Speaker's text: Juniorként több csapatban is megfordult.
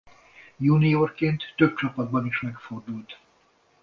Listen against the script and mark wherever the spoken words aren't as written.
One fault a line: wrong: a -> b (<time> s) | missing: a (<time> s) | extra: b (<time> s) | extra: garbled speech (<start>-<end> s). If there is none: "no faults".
no faults